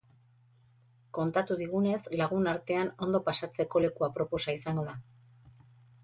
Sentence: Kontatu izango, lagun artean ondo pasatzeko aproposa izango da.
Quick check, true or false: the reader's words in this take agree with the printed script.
false